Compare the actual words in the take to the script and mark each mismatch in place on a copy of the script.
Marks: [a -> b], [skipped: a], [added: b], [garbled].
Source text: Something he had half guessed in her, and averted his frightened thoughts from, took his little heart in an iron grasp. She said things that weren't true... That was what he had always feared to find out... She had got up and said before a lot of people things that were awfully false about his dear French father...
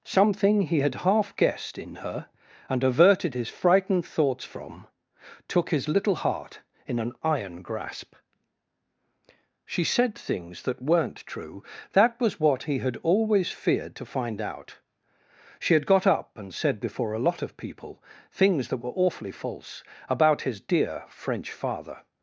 Something he had half guessed in her, and averted his frightened thoughts from, took his little heart in an iron grasp. She said things that weren't true... That was what he had always feared to find out... She had got up and said before a lot of people things that were awfully false about his dear French father...